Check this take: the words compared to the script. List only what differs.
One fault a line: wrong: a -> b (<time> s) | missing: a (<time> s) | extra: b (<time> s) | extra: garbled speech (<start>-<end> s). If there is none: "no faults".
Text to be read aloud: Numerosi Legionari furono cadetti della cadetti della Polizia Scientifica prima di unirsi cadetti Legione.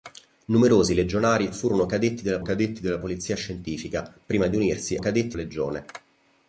no faults